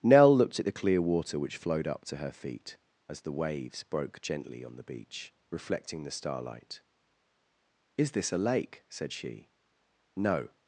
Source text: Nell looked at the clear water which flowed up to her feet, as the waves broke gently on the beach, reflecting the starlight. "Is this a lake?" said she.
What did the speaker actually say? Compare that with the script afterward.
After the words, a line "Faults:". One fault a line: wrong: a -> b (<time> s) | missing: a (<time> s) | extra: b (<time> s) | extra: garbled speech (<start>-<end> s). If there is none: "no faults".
Nell looked at the clear water which flowed up to her feet, as the waves broke gently on the beach, reflecting the starlight. "Is this a lake?" said she. "No
Faults:
extra: No (10.1 s)